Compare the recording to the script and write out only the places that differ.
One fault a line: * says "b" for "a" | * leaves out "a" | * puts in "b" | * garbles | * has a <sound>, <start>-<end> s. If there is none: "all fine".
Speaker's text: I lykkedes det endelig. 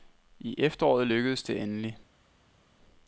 * puts in "efteråret"